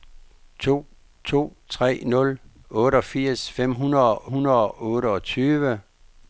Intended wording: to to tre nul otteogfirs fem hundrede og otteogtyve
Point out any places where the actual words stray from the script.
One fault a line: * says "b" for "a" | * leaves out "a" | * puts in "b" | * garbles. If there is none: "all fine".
* puts in "hundrede og"